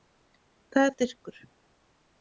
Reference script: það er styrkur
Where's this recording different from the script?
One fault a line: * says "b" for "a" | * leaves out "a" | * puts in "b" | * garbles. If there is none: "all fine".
all fine